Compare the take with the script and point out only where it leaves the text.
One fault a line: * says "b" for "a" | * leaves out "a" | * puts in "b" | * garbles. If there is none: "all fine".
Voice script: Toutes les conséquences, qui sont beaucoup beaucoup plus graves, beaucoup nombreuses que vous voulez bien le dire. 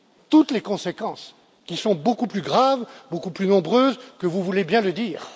* leaves out "beaucoup"
* puts in "plus"